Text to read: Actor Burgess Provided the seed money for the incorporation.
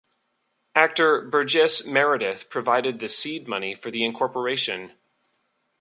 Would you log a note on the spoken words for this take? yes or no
yes